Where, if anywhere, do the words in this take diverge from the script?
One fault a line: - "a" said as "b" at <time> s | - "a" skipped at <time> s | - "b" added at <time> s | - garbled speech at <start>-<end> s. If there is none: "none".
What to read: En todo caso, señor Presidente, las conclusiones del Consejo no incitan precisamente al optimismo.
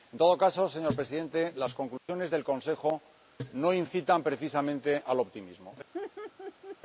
none